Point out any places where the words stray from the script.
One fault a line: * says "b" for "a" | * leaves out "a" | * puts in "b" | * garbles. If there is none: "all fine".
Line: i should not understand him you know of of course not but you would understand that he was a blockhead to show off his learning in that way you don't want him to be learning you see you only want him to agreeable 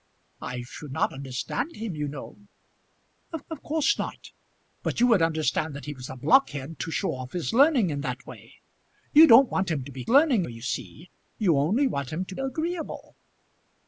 all fine